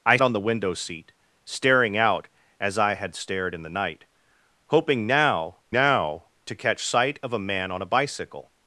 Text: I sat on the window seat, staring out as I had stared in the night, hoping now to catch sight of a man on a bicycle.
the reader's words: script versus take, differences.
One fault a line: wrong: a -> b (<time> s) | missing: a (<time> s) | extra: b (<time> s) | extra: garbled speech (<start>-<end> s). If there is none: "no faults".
missing: sat (0.2 s)
extra: now (5.7 s)